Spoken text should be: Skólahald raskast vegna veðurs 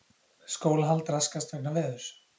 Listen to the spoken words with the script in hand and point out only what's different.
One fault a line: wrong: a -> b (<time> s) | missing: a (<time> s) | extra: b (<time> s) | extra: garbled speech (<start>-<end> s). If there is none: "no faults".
no faults